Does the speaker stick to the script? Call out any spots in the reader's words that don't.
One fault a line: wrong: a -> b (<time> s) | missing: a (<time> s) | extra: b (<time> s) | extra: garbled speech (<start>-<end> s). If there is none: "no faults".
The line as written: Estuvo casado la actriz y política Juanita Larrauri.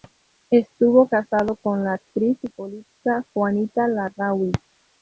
extra: con (1.6 s)